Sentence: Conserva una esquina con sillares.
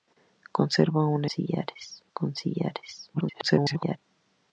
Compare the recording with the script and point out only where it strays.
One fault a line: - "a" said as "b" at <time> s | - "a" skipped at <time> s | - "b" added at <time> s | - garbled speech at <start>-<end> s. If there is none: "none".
- "esquina" said as "sillares" at 1.3 s
- garbled speech at 3.1-4.0 s